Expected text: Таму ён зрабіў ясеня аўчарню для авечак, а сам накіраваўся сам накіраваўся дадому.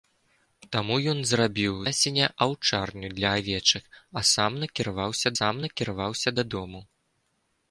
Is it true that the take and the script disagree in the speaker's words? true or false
false